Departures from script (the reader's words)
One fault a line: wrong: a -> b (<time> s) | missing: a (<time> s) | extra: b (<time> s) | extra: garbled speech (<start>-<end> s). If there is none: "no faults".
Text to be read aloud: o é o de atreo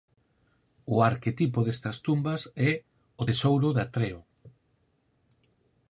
extra: arquetipo destas tumbas (1.1 s)
extra: tesouro (3.3 s)